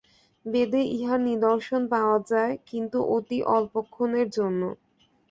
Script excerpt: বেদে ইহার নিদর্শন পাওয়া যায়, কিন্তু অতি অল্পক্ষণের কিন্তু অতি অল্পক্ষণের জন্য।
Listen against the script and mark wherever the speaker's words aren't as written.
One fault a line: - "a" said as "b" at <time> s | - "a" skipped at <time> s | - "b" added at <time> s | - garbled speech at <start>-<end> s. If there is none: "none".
- "কিন্তু অতি অল্পক্ষণের" skipped at 4.3 s